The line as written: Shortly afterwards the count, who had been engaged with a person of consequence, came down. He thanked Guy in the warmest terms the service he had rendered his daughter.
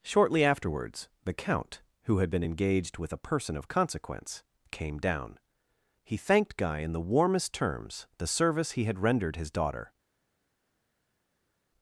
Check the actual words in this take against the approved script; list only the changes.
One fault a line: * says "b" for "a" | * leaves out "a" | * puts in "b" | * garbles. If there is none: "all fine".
all fine